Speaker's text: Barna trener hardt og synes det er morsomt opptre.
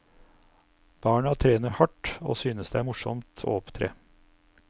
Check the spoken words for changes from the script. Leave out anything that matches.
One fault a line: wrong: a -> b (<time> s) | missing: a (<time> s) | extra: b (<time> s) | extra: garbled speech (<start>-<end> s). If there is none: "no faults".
extra: å (3.4 s)